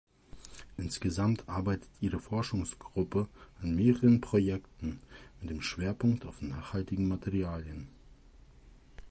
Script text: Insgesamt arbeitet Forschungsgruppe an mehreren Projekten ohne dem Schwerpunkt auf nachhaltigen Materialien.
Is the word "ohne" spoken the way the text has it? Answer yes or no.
no